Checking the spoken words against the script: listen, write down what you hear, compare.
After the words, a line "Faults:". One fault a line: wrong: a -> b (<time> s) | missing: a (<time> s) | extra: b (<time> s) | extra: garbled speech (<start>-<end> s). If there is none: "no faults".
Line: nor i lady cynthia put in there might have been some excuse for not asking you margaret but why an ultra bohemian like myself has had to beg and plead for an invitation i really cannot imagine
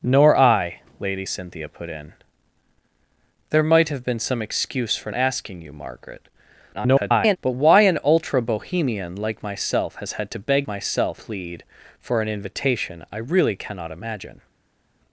nor i lady cynthia put in there might have been some excuse for asking you margaret [garbled] but why an ultra bohemian like myself has had to beg myself plead for an invitation i really cannot imagine
Faults:
missing: not (5.1 s)
extra: garbled speech (6.7-7.4 s)
wrong: and -> myself (10.7 s)